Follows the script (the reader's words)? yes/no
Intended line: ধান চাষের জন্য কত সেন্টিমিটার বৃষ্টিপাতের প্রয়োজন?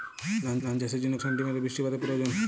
no